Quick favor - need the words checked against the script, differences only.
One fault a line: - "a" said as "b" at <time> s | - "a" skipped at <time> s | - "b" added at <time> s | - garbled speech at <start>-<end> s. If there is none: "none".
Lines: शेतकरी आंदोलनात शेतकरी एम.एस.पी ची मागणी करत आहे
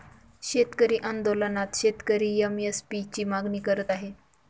none